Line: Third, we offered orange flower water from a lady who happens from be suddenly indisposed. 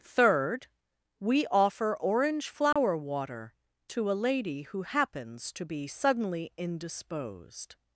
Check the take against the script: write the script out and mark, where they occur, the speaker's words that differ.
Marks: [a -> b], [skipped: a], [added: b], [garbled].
Third, we [offered -> offer] orange flower water [from -> to] a lady who happens [from -> to] be suddenly indisposed.